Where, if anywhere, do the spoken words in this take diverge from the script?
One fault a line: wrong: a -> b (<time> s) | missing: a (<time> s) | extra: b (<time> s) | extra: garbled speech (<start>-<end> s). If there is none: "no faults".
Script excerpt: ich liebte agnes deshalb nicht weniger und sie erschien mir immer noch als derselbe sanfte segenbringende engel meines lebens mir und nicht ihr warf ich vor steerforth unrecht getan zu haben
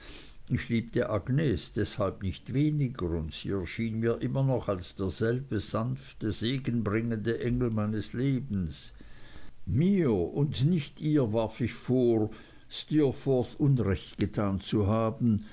no faults